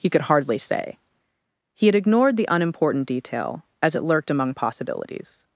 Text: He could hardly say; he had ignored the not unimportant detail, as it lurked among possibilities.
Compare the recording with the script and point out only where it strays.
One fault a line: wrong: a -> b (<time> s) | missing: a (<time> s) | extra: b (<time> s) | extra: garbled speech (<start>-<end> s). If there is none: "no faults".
missing: not (2.5 s)